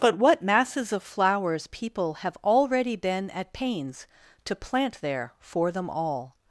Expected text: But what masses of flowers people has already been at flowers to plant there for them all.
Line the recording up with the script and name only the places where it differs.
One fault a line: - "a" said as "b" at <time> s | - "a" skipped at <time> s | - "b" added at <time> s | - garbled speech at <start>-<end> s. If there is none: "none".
- "has" said as "have" at 2.2 s
- "flowers" said as "pains" at 3.5 s